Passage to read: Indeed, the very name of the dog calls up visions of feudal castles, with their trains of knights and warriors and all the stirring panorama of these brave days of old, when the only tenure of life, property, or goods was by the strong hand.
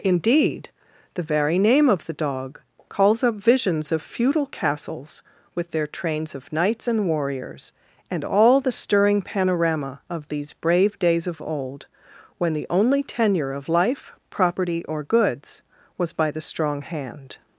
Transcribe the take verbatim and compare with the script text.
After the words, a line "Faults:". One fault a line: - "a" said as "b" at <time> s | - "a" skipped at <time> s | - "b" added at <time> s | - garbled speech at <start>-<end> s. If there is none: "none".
Indeed, the very name of the dog calls up visions of feudal castles, with their trains of knights and warriors and all the stirring panorama of these brave days of old, when the only tenure of life, property, or goods was by the strong hand.
Faults:
none